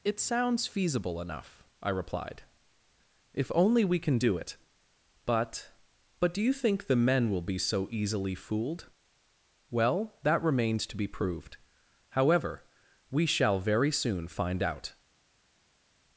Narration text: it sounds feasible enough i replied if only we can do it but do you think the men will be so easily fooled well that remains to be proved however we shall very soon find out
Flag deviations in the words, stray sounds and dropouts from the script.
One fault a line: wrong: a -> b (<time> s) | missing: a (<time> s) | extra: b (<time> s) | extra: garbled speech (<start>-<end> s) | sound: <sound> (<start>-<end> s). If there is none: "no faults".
extra: but (6.2 s)